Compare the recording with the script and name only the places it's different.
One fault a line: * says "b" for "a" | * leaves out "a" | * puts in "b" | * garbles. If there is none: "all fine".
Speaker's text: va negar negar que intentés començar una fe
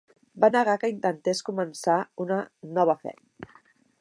* leaves out "negar"
* puts in "nova"